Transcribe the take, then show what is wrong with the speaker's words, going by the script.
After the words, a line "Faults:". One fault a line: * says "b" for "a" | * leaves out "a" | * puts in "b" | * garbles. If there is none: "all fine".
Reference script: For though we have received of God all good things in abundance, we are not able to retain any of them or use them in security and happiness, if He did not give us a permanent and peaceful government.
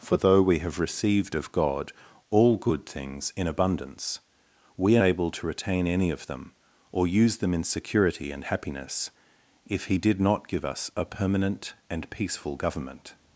For though we have received of God all good things in abundance, we are able to retain any of them or use them in security and happiness, if He did not give us a permanent and peaceful government.
Faults:
* leaves out "not"